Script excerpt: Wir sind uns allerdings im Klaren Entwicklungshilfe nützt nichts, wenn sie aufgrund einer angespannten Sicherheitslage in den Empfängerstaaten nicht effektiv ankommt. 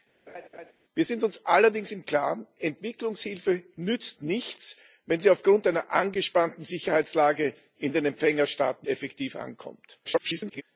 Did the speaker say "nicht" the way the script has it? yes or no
no